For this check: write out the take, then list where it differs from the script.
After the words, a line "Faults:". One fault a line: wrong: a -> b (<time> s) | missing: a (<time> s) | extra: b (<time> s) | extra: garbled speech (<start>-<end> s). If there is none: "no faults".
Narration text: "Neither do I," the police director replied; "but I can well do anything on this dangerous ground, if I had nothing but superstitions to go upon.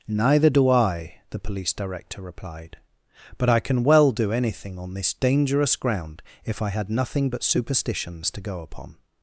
"Neither do I," the police director replied; "but I can well do anything on this dangerous ground, if I had nothing but superstitions to go upon.
Faults:
no faults